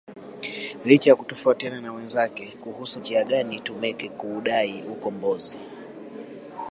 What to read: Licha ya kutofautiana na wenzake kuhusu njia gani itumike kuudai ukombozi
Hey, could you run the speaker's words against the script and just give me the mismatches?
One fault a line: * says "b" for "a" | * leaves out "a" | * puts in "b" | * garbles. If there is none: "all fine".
all fine